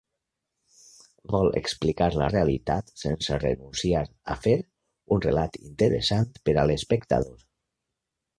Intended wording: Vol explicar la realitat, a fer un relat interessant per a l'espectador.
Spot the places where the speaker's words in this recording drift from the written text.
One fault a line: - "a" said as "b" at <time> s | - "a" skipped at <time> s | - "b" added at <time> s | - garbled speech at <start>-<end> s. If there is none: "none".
- "sense renunciar" added at 3.0 s